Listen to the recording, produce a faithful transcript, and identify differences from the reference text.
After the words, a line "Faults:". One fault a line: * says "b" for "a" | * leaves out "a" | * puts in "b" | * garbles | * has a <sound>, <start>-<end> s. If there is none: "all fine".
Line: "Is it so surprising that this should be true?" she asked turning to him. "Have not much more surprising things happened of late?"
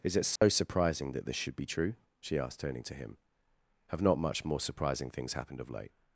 "Is it so surprising that this should be true?" she asked turning to him. "Have not much more surprising things happened of late?"
Faults:
* has a dropout, 0.4-0.4 s